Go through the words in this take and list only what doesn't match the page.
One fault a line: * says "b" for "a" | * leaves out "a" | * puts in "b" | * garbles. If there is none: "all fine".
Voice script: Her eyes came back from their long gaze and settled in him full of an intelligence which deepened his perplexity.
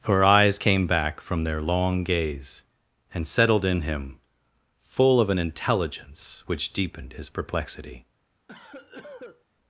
all fine